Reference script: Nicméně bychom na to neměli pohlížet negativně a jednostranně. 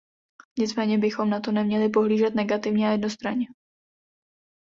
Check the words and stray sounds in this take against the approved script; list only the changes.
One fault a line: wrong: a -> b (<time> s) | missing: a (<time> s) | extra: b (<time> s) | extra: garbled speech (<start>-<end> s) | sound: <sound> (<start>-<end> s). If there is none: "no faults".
no faults